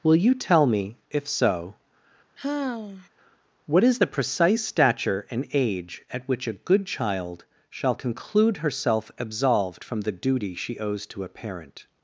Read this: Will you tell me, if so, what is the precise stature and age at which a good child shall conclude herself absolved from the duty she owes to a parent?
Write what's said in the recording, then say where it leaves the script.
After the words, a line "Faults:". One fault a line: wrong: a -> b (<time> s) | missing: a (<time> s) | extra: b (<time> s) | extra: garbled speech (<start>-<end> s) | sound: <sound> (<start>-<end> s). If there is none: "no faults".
Will you tell me, if so, what is the precise stature and age at which a good child shall conclude herself absolved from the duty she owes to a parent?
Faults:
sound: sigh (2.4-3.1 s)